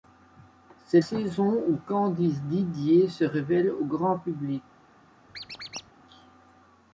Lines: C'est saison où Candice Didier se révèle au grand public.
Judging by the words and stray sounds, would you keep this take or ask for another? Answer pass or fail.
fail